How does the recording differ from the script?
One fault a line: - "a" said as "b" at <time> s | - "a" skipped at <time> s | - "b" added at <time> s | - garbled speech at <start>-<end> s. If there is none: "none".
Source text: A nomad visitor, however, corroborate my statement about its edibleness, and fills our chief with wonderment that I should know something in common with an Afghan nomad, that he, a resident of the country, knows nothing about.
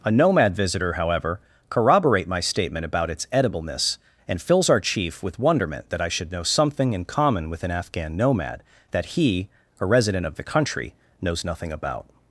none